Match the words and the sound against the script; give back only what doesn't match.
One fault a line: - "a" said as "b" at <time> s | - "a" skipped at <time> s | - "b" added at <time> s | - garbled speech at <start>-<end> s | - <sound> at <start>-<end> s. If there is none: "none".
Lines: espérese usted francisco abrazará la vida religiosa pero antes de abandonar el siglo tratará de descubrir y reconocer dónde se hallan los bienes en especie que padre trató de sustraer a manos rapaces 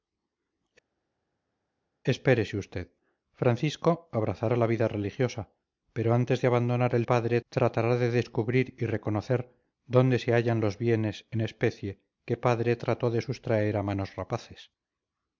- "siglo" said as "padre" at 7.0 s